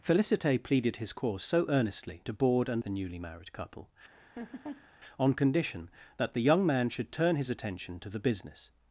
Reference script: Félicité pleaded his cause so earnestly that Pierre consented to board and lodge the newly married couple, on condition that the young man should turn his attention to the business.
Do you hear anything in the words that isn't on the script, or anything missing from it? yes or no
yes